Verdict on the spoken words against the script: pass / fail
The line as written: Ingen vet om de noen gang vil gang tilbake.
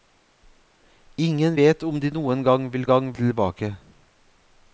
pass